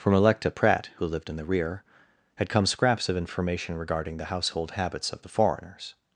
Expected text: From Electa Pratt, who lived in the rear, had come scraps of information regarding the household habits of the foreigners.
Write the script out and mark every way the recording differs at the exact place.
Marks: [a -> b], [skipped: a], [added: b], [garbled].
From Electa Pratt, who lived in the rear, had come scraps of information regarding the household habits of the foreigners.